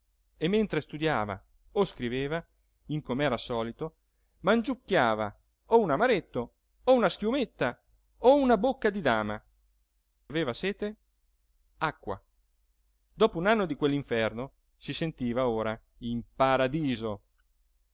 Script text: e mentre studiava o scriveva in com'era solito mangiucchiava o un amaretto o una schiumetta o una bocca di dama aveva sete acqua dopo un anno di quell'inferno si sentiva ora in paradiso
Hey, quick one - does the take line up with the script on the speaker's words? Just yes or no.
yes